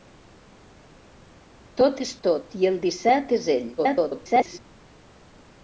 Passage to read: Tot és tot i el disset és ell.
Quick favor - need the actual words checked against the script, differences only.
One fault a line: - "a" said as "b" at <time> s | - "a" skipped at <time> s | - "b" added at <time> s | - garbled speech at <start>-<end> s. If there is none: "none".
- garbled speech at 3.8-4.6 s